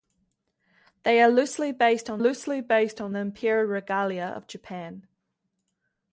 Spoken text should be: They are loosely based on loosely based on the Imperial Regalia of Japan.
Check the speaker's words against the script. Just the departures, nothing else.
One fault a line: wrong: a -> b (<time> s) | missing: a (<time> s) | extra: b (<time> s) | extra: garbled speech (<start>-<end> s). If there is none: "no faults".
no faults